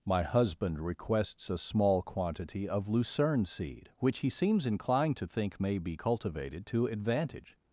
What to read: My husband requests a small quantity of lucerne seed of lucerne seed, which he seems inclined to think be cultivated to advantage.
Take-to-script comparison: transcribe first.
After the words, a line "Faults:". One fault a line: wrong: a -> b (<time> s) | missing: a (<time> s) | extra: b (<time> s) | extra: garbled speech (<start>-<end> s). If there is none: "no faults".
My husband requests a small quantity of lucerne seed, which he seems inclined to think may be cultivated to advantage.
Faults:
missing: of lucerne seed (3.9 s)
extra: may (5.6 s)